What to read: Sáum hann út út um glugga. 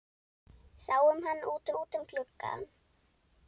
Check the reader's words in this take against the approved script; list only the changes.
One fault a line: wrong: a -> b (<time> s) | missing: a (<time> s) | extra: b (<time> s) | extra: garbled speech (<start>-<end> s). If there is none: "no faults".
no faults